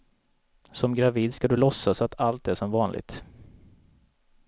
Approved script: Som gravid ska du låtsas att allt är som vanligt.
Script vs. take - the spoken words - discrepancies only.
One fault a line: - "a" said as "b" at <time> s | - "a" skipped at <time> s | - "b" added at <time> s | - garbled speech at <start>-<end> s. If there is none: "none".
none